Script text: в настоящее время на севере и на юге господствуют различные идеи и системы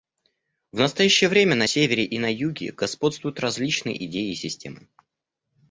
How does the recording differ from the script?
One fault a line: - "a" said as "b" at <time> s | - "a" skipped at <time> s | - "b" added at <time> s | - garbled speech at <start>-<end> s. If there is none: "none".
none